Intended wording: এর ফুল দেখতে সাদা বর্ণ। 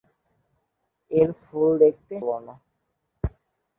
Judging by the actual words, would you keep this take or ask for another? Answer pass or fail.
fail